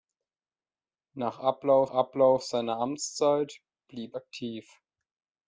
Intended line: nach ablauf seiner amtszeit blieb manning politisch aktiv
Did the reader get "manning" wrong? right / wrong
wrong